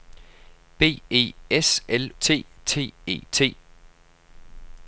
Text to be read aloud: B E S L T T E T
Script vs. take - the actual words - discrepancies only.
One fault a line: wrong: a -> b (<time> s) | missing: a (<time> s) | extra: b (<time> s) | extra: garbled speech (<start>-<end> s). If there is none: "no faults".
no faults